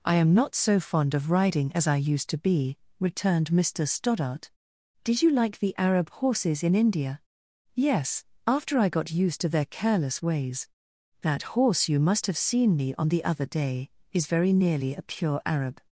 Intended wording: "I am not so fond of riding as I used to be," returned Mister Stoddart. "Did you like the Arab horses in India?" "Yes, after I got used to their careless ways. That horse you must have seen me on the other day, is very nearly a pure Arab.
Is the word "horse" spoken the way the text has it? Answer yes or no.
yes